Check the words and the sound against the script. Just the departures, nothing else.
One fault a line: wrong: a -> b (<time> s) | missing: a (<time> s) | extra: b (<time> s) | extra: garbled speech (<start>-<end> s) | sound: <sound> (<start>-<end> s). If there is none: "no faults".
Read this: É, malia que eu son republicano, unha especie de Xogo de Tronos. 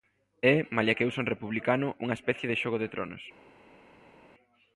no faults